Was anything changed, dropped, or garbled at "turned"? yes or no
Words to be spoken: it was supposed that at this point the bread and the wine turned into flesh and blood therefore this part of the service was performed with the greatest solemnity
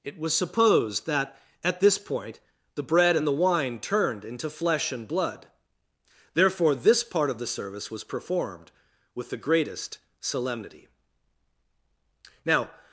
no